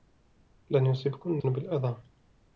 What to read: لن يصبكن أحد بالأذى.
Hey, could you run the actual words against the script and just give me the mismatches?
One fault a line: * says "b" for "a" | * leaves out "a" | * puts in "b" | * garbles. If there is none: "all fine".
* leaves out "أحد"